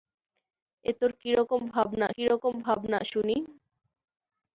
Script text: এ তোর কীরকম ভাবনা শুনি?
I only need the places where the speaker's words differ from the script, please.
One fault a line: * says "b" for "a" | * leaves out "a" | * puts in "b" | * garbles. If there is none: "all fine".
* puts in "কীরকম ভাবনা"